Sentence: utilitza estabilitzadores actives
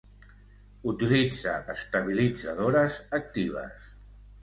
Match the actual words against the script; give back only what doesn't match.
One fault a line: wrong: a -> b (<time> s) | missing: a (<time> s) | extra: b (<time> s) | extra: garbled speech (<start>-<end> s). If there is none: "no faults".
no faults